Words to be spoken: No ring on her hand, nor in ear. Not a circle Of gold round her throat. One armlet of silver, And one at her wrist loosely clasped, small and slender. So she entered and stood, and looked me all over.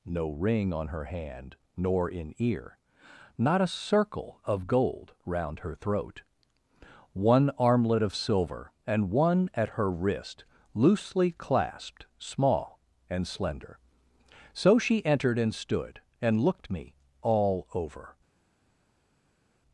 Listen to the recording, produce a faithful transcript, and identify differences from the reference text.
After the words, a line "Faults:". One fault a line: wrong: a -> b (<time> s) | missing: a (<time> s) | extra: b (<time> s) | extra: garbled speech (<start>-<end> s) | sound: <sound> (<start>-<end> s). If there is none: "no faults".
No ring on her hand, nor in ear. Not a circle Of gold round her throat. One armlet of silver, And one at her wrist loosely clasped, small and slender. So she entered and stood, and looked me all over.
Faults:
no faults